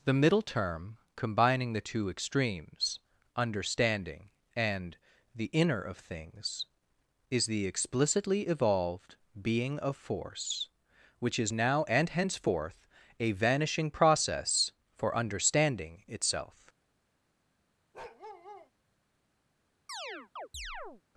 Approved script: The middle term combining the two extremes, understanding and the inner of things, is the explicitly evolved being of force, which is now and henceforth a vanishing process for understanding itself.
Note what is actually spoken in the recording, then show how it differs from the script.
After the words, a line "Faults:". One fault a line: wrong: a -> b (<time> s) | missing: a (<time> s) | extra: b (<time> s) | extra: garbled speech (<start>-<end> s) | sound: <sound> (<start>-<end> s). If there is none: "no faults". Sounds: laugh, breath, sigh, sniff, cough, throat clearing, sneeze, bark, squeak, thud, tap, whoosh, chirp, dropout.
The middle term combining the two extremes, understanding and the inner of things, is the explicitly evolved being of force, which is now and henceforth a vanishing process for understanding itself.
Faults:
sound: bark (17.9-18.7 s)
sound: chirp (19.9-21.0 s)